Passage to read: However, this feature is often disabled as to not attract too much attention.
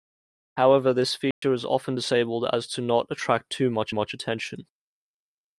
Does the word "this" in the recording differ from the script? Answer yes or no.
no